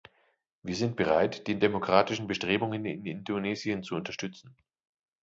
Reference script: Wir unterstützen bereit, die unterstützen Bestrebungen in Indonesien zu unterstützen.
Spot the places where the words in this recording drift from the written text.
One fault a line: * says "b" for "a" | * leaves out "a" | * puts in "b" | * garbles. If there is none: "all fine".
* says "sind" for "unterstützen"
* says "demokratischen" for "unterstützen"